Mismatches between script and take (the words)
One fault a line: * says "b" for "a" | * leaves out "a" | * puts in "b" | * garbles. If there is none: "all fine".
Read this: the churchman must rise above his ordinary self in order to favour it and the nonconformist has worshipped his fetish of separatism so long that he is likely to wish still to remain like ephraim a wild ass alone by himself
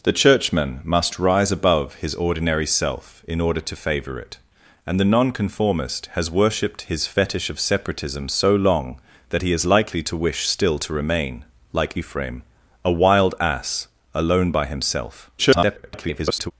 * garbles